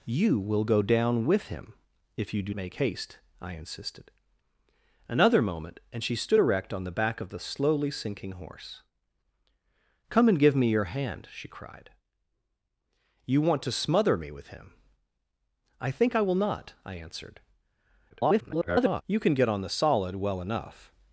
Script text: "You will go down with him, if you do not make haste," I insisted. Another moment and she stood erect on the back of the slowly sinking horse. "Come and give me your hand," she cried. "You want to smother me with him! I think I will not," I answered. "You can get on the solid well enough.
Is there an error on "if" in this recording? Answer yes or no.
no